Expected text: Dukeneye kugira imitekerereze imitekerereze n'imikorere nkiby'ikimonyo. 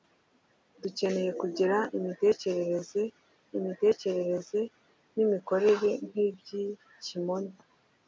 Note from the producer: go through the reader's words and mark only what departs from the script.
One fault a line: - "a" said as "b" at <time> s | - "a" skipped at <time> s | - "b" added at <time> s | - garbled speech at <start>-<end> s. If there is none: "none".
none